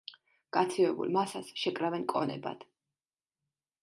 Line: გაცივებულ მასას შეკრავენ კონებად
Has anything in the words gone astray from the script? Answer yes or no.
no